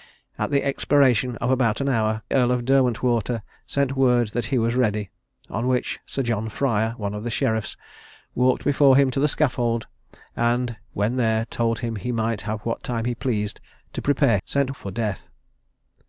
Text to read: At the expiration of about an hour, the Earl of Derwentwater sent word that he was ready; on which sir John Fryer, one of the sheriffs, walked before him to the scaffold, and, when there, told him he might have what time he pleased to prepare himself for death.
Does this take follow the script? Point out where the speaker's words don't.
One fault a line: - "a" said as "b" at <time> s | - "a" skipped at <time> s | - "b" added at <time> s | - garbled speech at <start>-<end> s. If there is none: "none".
- "the" skipped at 2.2 s
- "himself" said as "sent" at 14.4 s